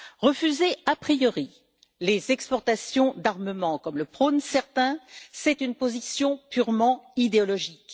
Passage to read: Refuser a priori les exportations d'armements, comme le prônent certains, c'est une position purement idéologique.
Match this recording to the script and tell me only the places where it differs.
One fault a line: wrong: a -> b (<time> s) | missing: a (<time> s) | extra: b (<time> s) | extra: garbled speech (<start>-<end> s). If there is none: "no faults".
no faults